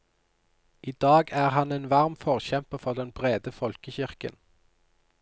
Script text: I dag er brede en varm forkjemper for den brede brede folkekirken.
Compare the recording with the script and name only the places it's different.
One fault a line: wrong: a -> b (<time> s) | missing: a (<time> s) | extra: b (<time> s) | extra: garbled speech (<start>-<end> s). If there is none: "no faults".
wrong: brede -> han (1.6 s)
missing: brede (3.5 s)